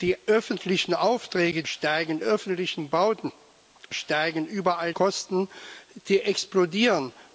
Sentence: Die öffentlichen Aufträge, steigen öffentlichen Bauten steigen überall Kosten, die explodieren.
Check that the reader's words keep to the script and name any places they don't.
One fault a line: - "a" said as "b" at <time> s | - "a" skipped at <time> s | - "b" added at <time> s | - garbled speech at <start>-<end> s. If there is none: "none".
none